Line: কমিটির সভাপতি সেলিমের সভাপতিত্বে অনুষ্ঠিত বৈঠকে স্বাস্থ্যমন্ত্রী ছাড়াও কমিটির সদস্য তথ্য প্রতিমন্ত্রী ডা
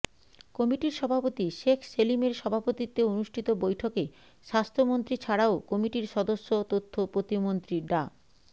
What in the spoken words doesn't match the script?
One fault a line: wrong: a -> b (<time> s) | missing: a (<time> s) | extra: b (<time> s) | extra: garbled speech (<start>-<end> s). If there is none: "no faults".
extra: শেখ (1.6 s)